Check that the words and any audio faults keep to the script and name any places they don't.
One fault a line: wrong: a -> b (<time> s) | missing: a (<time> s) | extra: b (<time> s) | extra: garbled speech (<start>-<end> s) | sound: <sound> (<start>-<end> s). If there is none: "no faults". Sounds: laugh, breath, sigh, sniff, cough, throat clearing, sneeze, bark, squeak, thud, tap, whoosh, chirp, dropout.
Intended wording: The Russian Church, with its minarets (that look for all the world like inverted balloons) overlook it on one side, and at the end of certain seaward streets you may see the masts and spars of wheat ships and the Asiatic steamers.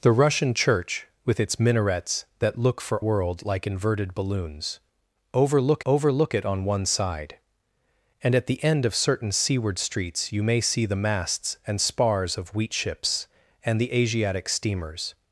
missing: all the (3.0 s)
extra: overlook (5.9 s)